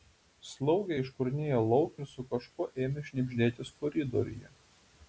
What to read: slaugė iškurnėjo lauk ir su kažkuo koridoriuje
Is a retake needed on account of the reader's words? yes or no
yes